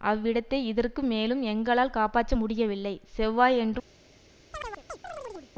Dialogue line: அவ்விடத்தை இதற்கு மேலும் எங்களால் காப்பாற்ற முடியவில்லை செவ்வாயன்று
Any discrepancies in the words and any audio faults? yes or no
yes